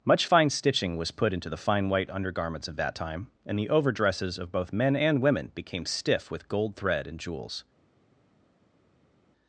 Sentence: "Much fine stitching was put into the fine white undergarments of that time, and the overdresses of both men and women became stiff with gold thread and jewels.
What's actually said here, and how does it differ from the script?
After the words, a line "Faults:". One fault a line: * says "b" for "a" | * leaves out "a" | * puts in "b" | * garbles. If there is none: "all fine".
"Much fine stitching was put into the fine white undergarments of that time, and the overdresses of both men and women became stiff with gold thread and jewels.
Faults:
all fine